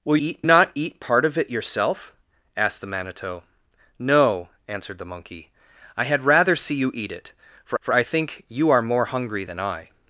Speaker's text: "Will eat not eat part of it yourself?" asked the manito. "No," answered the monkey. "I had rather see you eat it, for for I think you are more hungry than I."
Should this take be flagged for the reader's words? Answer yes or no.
no